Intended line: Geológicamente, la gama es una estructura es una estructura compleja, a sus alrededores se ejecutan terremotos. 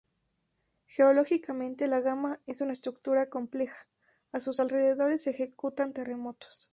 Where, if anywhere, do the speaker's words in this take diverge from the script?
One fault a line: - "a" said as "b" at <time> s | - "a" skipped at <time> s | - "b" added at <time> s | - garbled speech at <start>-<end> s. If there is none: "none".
- "es una estructura" skipped at 3.3 s